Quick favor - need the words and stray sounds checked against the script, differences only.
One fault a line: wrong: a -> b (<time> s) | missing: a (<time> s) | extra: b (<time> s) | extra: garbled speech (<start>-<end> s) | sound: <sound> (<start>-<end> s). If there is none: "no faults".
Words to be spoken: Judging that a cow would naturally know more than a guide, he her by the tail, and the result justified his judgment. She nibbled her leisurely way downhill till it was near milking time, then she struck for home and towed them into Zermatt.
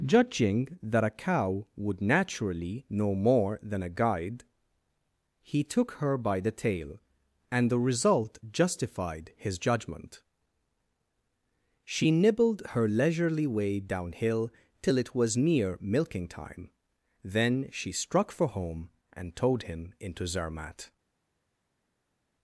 extra: took (5.6 s)
wrong: them -> him (19.6 s)